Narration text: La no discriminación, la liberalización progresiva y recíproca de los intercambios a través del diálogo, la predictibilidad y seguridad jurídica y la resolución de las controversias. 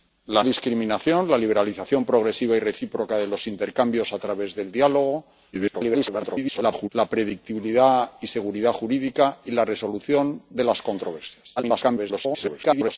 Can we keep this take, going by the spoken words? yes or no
no